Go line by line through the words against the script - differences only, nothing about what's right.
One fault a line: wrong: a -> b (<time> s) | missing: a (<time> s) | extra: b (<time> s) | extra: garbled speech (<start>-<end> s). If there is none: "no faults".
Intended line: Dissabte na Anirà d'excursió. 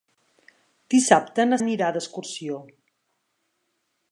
no faults